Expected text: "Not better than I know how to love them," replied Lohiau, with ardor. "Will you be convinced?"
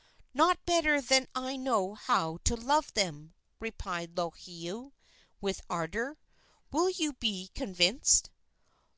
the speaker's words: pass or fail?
pass